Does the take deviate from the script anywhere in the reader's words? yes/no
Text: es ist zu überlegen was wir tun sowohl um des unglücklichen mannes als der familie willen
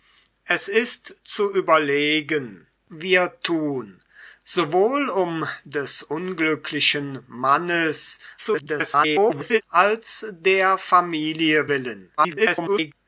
yes